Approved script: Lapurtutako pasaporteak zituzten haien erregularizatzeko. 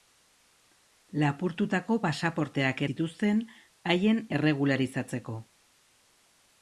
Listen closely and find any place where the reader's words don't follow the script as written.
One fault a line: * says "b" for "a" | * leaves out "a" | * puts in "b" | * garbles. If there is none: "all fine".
all fine